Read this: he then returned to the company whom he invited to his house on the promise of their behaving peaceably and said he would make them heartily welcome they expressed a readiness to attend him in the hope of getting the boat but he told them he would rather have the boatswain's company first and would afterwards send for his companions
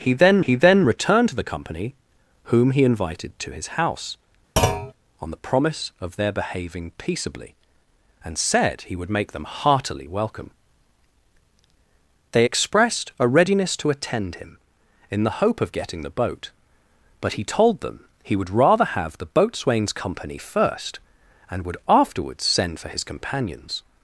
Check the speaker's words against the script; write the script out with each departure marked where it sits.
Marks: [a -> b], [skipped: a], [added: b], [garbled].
he then [added: he then] returned to the company whom he invited to his house on the promise of their behaving peaceably and said he would make them heartily welcome they expressed a readiness to attend him in the hope of getting the boat but he told them he would rather have the boatswain's company first and would afterwards send for his companions